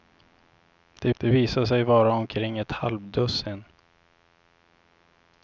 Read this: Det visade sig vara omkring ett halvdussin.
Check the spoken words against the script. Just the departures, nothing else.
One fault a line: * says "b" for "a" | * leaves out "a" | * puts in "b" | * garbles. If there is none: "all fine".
* puts in "det"